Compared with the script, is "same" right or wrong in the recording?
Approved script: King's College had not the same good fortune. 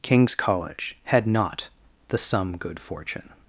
wrong